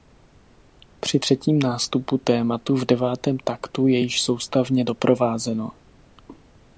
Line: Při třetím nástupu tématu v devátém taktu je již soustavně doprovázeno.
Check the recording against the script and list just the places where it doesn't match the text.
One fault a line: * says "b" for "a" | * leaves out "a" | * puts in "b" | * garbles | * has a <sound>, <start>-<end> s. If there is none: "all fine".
all fine